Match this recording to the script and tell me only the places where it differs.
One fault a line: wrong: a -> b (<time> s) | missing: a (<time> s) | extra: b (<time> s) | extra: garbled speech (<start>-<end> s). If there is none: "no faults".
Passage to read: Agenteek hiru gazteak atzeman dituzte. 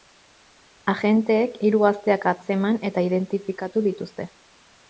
extra: eta identifikatu (2.9 s)